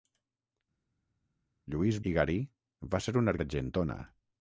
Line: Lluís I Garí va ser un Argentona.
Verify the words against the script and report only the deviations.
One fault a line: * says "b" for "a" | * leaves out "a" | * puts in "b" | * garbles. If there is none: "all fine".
all fine